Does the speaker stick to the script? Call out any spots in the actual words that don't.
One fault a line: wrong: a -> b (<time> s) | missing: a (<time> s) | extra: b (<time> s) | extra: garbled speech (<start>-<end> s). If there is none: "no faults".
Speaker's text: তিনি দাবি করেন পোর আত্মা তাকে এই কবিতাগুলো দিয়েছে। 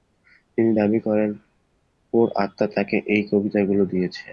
no faults